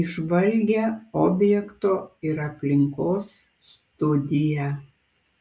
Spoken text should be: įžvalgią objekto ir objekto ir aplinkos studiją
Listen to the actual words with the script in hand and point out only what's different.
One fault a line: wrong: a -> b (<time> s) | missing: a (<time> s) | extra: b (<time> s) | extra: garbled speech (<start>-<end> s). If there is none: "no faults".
missing: objekto ir (2.4 s)